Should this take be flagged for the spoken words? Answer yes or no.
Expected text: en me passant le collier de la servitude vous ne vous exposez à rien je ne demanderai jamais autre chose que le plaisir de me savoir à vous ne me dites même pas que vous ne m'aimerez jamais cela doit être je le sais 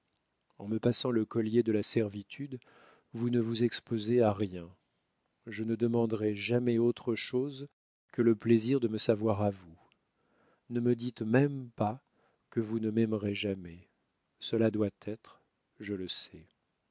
no